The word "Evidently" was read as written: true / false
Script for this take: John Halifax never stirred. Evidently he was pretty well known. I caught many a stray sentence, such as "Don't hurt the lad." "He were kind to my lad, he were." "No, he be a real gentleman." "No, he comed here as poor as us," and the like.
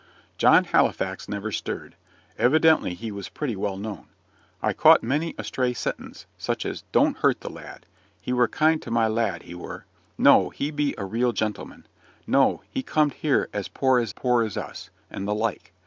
true